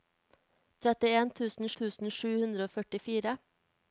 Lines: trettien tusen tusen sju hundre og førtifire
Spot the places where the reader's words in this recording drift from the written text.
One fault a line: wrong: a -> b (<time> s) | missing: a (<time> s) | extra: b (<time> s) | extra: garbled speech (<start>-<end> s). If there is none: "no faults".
no faults